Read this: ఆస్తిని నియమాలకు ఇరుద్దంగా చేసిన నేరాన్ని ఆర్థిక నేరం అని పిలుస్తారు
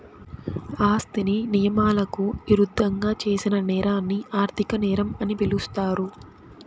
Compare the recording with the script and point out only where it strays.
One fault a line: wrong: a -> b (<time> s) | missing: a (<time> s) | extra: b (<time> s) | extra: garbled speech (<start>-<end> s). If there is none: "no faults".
no faults